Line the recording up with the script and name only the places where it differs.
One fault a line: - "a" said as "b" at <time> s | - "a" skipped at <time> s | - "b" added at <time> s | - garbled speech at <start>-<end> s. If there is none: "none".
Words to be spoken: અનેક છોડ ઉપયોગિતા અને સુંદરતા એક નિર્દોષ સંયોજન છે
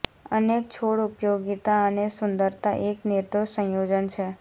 none